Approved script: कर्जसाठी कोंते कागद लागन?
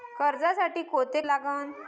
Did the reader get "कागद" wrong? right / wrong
wrong